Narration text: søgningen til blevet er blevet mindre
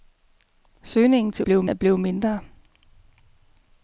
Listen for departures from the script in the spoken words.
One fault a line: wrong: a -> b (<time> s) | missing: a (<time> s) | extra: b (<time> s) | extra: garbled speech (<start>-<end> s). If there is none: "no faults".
no faults